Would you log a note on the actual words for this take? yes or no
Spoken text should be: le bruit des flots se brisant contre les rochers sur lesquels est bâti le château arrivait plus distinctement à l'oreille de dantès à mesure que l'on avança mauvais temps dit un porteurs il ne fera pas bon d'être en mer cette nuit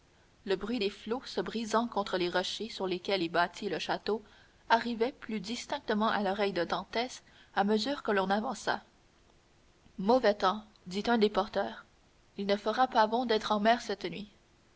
yes